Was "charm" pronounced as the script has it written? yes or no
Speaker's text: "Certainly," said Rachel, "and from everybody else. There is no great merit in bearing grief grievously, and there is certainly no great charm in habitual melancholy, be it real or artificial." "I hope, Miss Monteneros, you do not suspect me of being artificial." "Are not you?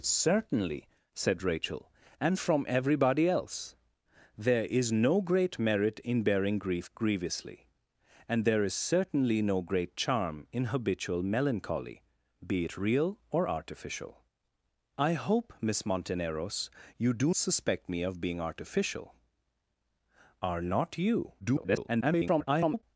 yes